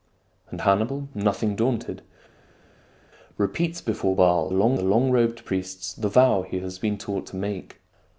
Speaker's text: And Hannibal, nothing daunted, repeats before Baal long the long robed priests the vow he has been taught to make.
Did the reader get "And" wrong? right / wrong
right